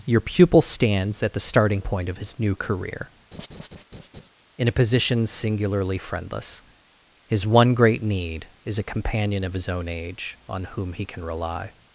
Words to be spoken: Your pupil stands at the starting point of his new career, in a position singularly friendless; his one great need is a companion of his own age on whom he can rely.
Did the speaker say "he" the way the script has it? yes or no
yes